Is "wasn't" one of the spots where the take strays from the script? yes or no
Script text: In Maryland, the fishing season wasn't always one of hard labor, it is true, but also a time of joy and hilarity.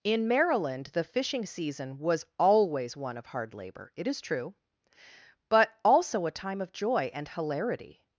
yes